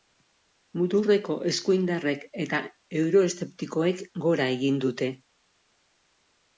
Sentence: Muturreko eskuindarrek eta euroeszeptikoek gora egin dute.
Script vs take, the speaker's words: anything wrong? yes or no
no